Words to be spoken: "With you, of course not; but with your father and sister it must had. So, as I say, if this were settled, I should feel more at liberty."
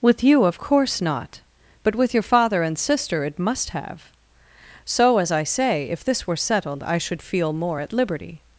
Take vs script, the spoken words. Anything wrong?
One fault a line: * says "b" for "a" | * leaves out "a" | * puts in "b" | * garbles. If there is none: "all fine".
* says "have" for "had"